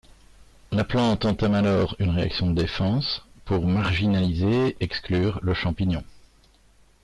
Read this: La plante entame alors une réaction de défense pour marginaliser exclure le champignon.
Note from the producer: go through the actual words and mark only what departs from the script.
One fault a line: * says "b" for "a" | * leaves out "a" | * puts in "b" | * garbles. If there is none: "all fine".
all fine